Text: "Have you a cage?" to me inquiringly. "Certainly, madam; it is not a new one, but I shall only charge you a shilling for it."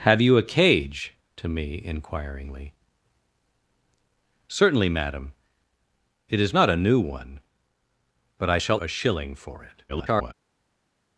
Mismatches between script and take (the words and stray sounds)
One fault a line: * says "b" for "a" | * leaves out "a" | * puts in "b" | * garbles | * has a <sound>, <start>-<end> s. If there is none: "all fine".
* leaves out "only charge you"
* garbles